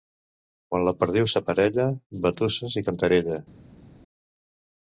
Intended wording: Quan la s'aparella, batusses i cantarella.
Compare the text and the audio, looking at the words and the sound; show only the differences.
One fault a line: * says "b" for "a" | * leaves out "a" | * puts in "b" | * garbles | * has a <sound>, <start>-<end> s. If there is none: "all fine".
* puts in "perdiu"